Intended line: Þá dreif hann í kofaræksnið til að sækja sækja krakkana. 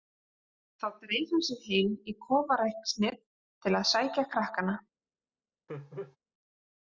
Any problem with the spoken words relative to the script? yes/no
yes